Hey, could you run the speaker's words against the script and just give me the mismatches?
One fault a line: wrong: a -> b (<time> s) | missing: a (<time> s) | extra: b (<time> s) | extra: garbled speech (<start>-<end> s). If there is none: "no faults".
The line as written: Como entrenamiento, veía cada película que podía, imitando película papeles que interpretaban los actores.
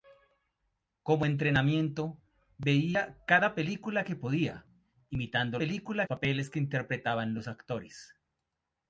no faults